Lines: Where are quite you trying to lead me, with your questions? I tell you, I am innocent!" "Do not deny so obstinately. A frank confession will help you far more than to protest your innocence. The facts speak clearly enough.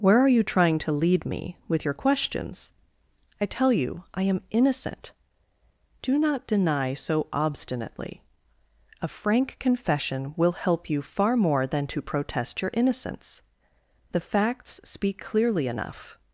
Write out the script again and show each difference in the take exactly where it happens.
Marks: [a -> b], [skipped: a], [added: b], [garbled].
Where are [skipped: quite] you trying to lead me, with your questions? I tell you, I am innocent!" "Do not deny so obstinately. A frank confession will help you far more than to protest your innocence. The facts speak clearly enough.